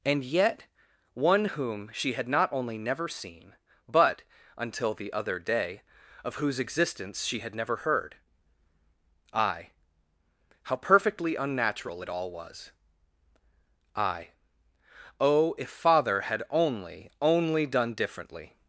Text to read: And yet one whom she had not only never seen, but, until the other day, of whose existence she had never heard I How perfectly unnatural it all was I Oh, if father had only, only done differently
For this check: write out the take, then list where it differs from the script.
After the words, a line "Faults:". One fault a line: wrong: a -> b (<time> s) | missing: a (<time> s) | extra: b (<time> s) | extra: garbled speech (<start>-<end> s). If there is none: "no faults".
And yet one whom she had not only never seen, but, until the other day, of whose existence she had never heard I How perfectly unnatural it all was I Oh, if father had only, only done differently
Faults:
no faults